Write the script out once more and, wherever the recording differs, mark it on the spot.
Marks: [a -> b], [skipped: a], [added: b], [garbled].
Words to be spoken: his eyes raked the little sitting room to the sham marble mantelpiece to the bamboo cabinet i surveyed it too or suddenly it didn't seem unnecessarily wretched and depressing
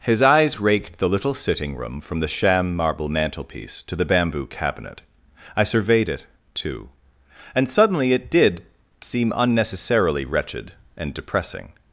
his eyes raked the little sitting room [to -> from] the sham marble mantelpiece to the bamboo cabinet i surveyed it too [or -> and] suddenly it [didn't -> did] seem unnecessarily wretched and depressing